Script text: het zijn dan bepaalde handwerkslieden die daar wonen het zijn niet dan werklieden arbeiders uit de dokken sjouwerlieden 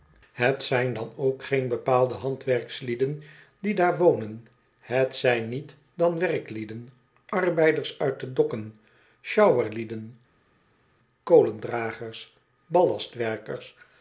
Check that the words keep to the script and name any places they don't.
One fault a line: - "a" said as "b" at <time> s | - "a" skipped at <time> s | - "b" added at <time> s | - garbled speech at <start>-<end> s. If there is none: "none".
- "ook geen" added at 1.1 s